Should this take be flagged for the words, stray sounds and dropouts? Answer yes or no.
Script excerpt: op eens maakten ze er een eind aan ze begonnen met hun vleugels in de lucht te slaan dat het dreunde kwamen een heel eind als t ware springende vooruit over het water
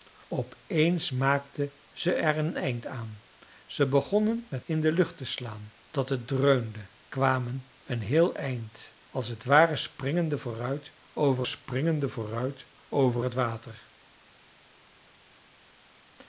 yes